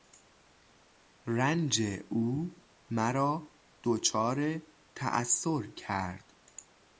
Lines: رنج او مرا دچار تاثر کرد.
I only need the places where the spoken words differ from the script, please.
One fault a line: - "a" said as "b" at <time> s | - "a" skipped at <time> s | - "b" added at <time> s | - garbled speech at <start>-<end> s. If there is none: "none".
none